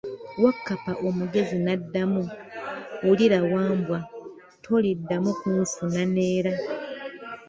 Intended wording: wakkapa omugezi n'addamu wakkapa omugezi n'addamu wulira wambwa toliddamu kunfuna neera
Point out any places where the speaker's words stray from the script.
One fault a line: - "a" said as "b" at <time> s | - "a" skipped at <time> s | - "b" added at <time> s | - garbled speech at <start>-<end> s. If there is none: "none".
- "wakkapa omugezi n'addamu" skipped at 2.2 s